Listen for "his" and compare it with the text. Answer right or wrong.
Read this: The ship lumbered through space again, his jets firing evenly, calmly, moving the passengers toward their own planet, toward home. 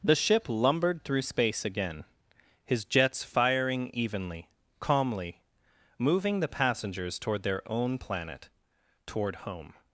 right